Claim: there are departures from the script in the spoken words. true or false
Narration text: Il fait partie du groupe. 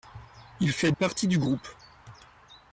false